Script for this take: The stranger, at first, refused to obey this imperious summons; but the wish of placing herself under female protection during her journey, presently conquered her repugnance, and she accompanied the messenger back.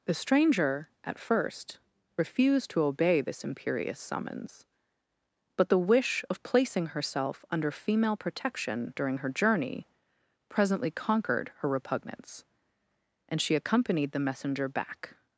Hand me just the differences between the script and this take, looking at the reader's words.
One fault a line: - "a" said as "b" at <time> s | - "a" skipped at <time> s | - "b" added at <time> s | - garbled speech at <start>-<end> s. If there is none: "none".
none